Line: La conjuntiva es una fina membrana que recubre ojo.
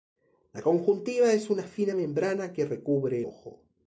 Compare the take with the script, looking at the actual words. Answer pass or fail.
pass